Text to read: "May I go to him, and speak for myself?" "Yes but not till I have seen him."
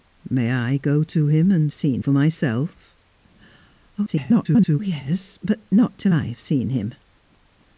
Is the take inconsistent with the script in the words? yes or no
yes